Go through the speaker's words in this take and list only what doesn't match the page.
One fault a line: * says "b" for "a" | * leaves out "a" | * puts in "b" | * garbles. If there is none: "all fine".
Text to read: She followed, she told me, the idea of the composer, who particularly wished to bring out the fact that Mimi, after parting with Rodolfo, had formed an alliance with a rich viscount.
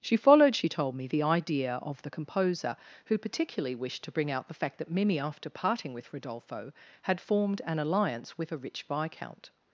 all fine